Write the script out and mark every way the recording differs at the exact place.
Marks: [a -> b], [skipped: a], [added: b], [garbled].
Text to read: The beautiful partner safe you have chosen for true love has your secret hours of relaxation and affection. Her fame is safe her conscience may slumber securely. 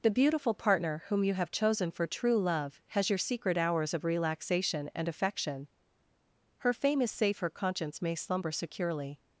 The beautiful partner [safe -> whom] you have chosen for true love has your secret hours of relaxation and affection. Her fame is safe her conscience may slumber securely.